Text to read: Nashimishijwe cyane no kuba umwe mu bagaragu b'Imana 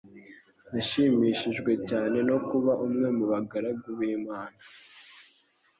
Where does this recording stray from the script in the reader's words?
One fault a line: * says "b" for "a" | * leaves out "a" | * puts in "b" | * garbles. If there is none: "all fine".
all fine